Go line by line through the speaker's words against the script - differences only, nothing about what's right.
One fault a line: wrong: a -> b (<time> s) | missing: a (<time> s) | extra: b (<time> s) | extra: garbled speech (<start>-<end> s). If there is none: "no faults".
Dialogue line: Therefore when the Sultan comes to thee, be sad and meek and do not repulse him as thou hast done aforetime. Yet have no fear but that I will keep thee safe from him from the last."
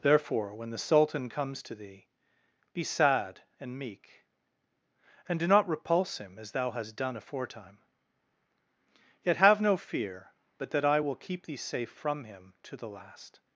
wrong: from -> to (12.6 s)